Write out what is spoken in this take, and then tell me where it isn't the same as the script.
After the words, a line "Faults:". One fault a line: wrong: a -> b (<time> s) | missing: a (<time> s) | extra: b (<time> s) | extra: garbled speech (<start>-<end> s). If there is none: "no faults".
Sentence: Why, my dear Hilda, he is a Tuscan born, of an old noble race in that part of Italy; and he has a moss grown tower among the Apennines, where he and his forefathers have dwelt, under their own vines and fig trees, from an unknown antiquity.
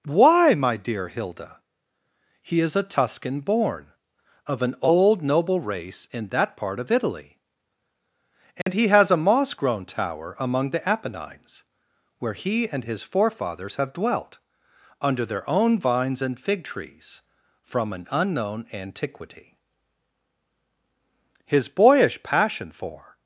Why, my dear Hilda, he is a Tuscan born, of an old noble race in that part of Italy; and he has a moss grown tower among the Apennines, where he and his forefathers have dwelt, under their own vines and fig trees, from an unknown antiquity. His boyish passion for
Faults:
extra: His boyish passion for (21.4 s)